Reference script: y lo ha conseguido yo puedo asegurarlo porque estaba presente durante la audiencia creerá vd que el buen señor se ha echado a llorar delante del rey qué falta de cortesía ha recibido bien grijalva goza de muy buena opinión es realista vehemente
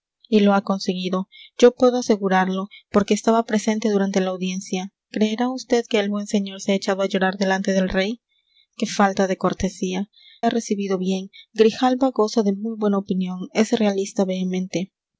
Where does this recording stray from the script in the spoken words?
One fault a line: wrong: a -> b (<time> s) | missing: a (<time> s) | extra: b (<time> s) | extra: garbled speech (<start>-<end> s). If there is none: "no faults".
no faults